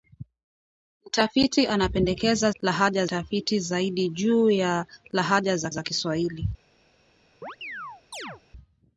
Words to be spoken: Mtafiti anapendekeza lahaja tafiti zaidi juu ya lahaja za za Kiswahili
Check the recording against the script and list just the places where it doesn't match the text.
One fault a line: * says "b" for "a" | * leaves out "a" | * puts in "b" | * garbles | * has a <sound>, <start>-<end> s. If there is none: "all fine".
* has a chirp, 7.4-8.4 s